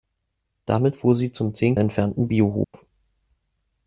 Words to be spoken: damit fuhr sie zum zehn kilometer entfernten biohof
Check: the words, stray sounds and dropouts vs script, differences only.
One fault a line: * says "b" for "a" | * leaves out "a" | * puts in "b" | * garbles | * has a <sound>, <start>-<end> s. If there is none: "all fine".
* leaves out "kilometer"
* has a dropout, 2.6-2.7 s